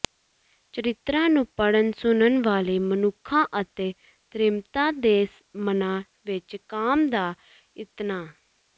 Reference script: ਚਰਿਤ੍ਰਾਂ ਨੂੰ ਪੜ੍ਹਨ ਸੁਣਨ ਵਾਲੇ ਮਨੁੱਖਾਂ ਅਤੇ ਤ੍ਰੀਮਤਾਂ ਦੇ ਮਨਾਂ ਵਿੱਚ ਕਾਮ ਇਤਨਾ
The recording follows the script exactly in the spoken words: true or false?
false